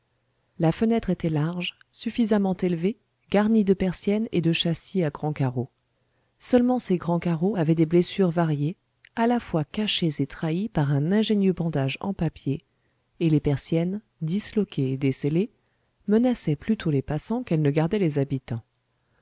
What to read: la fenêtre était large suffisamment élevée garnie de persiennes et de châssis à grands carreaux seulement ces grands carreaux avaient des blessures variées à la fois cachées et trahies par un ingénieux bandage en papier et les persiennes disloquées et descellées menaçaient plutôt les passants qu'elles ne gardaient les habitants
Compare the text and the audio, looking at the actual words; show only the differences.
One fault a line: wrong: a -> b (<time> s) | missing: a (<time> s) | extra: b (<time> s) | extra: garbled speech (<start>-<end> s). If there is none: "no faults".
no faults